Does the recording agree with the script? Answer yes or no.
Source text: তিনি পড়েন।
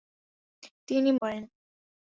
yes